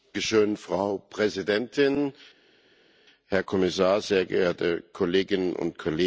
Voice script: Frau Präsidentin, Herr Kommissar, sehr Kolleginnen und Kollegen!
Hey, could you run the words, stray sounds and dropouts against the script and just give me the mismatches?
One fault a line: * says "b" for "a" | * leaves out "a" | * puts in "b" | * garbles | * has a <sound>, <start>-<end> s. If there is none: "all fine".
* puts in "geehrte"